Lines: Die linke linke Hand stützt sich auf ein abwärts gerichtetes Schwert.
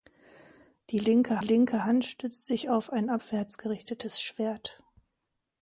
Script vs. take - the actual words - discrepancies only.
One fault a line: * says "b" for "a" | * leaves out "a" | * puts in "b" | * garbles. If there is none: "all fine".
all fine